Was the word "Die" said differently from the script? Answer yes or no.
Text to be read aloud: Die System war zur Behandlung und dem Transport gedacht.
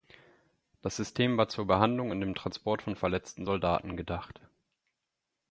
yes